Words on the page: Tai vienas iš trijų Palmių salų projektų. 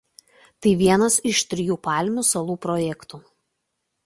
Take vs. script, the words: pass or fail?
pass